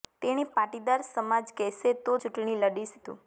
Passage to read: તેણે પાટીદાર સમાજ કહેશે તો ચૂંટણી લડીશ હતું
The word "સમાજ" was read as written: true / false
true